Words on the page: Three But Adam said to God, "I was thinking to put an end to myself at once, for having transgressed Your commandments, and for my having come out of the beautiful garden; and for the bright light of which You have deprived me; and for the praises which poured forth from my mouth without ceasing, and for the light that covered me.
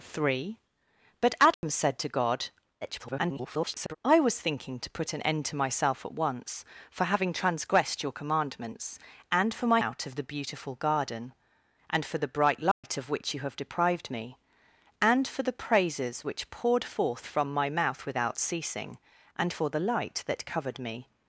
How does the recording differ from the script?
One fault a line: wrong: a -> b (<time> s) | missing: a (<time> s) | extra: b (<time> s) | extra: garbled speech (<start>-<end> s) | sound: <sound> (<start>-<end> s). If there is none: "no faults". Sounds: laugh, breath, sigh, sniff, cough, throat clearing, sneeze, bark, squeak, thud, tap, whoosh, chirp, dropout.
sound: dropout (1.5-1.6 s)
extra: garbled speech (2.8-4.0 s)
missing: having come (9.8 s)
sound: dropout (12.7-12.8 s)